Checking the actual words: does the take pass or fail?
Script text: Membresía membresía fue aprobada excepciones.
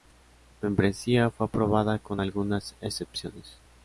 fail